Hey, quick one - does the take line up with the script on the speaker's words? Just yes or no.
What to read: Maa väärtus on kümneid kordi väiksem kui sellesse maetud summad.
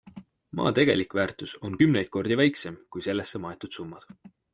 no